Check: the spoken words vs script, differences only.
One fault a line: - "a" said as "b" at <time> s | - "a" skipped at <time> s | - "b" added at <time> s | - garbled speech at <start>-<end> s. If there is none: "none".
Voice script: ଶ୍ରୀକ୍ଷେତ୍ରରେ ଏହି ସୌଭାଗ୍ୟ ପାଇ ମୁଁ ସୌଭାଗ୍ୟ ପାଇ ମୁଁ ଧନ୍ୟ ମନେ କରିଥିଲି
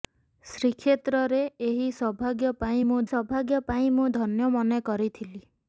none